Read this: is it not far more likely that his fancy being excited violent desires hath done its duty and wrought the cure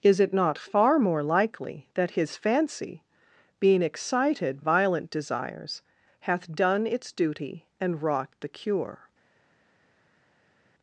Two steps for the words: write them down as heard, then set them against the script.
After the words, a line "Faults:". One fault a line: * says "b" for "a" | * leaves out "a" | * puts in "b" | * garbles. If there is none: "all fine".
is it not far more likely that his fancy being excited violent desires hath done its duty and wrought the cure
Faults:
all fine